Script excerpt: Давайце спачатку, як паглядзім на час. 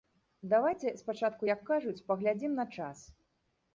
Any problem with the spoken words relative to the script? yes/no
yes